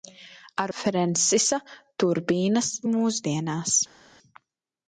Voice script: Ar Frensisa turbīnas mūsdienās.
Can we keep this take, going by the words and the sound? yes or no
yes